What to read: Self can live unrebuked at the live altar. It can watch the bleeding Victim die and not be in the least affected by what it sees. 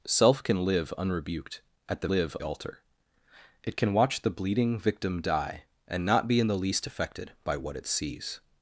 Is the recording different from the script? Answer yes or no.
no